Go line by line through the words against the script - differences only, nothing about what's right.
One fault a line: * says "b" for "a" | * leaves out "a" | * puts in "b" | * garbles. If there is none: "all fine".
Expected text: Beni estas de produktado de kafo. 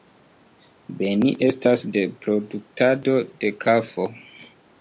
all fine